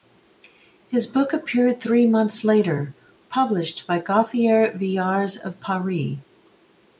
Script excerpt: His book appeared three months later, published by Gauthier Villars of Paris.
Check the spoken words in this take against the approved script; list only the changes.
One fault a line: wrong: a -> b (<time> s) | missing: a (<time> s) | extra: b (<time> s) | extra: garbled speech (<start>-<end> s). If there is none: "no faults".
no faults